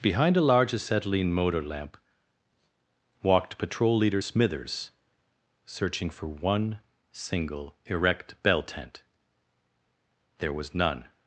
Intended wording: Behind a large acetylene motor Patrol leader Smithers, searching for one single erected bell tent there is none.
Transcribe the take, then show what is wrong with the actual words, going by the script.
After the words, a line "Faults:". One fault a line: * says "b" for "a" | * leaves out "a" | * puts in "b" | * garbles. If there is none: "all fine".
Behind a large acetylene motor lamp, walked Patrol leader Smithers, searching for one single erect bell tent there was none.
Faults:
* puts in "lamp walked"
* says "erect" for "erected"
* says "was" for "is"